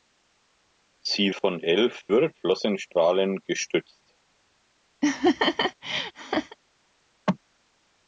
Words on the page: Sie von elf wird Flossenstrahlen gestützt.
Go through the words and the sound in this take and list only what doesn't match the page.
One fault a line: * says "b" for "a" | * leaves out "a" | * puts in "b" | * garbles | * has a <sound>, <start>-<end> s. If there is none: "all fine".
* has a laugh, 5.0-6.6 s